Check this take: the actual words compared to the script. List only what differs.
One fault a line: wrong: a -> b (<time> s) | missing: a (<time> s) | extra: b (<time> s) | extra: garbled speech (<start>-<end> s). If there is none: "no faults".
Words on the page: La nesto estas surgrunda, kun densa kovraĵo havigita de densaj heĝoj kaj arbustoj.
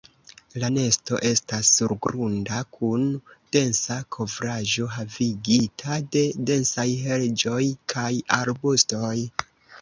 no faults